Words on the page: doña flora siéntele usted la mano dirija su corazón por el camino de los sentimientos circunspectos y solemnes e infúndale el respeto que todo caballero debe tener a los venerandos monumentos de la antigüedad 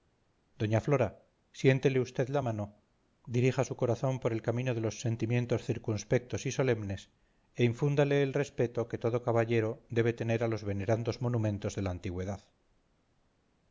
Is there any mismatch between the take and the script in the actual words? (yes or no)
no